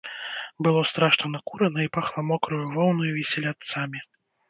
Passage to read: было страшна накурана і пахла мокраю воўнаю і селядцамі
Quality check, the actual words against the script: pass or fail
pass